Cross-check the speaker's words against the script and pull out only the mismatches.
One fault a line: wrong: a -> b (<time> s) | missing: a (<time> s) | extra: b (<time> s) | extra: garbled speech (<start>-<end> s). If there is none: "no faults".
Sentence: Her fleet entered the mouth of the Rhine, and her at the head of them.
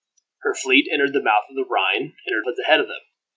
no faults